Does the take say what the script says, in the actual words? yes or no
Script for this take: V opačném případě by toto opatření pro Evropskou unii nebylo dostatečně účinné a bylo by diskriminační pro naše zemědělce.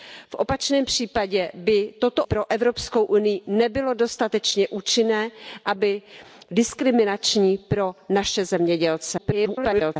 no